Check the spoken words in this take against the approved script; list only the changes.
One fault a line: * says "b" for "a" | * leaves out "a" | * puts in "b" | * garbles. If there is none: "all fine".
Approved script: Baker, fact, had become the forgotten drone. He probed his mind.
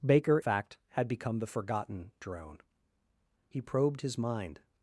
all fine